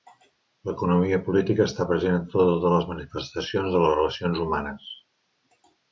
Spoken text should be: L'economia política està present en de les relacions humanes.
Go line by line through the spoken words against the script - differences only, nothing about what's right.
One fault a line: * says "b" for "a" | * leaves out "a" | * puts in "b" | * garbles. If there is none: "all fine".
* puts in "totes les manifestacions"